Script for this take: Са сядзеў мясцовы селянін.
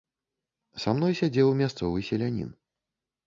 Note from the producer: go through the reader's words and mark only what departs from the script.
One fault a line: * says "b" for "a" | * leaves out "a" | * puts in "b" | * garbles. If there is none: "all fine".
* puts in "мной"